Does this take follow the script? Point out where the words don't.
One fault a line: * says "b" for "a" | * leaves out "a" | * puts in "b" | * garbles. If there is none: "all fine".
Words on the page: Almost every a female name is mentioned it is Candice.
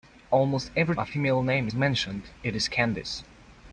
all fine